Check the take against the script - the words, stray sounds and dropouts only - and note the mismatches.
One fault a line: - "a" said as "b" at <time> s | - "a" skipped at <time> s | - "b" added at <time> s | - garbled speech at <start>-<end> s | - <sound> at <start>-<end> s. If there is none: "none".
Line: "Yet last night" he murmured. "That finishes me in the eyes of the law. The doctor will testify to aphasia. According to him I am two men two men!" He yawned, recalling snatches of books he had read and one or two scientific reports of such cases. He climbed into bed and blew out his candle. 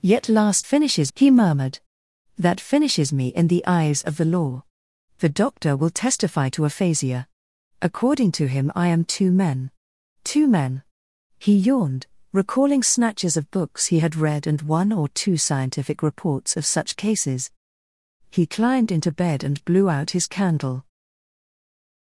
- "night" said as "finishes" at 0.6 s